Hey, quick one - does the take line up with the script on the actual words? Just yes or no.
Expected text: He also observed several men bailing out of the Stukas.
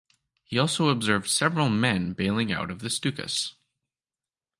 yes